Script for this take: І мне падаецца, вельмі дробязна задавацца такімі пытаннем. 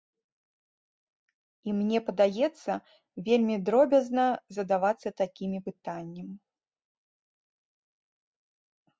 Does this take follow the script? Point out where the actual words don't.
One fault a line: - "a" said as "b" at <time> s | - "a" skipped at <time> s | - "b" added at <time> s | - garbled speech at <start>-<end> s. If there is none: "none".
none